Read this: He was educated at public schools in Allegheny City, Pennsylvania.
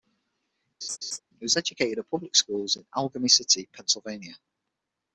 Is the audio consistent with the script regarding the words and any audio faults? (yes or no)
no